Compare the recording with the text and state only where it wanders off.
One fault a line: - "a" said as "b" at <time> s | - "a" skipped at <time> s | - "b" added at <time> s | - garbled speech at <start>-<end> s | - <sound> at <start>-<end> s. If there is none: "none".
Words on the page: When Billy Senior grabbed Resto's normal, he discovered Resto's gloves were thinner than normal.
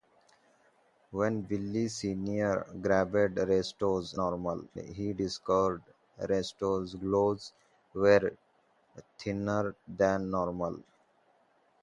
none